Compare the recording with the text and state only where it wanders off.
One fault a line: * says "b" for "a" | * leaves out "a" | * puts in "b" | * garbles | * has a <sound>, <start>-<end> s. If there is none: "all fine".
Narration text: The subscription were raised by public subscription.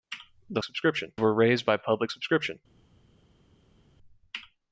all fine